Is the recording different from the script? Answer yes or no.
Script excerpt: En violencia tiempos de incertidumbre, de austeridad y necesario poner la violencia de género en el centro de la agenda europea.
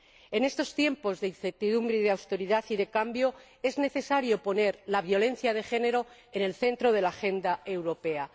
yes